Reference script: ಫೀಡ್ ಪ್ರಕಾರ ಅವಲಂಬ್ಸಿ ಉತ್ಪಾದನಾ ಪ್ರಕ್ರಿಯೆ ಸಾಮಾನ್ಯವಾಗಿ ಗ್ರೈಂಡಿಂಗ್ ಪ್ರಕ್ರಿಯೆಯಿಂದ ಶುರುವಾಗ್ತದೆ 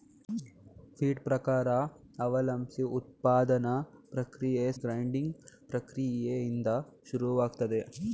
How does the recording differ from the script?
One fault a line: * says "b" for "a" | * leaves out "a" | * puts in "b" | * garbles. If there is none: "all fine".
* leaves out "ಸಾಮಾನ್ಯವಾಗಿ"